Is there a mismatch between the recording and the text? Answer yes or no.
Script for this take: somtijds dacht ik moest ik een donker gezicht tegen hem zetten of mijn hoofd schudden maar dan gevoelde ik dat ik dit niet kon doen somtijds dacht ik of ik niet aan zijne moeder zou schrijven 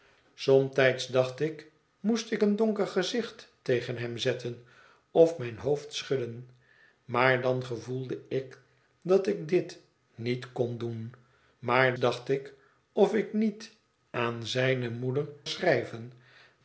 yes